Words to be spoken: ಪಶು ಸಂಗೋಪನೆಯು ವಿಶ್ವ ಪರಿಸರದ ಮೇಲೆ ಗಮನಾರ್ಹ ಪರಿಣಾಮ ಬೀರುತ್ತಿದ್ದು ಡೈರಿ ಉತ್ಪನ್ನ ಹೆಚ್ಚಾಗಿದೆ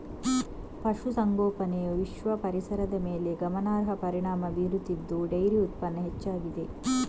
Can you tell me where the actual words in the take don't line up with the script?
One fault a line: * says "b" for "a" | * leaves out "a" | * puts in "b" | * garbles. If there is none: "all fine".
all fine